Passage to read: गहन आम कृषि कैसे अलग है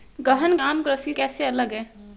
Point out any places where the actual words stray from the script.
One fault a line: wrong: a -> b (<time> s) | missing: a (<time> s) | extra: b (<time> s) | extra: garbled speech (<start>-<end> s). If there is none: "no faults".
no faults